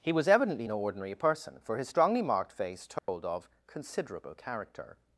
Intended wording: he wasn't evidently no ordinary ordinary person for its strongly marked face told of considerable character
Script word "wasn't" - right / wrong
wrong